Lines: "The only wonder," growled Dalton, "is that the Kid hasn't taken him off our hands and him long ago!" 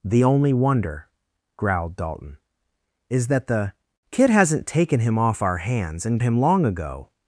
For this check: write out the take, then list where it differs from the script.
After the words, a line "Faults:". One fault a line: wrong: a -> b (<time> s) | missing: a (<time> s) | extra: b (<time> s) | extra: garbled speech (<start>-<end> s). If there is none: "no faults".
"The only wonder," growled Dalton, "is that the Kid hasn't taken him off our hands and him long ago!"
Faults:
no faults